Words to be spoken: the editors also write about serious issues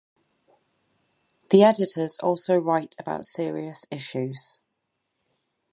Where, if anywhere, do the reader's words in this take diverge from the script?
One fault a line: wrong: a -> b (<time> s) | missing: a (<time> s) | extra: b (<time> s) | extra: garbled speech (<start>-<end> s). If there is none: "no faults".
no faults